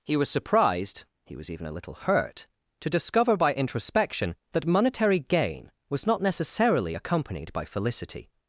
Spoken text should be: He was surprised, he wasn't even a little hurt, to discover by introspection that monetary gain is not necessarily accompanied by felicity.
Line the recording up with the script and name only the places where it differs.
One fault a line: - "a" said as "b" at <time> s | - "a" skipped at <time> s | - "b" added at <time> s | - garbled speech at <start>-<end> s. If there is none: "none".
- "wasn't" said as "was" at 1.4 s
- "is" said as "was" at 5.9 s